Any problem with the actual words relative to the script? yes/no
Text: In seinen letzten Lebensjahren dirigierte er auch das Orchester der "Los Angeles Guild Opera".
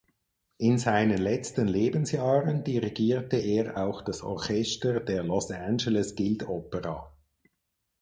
no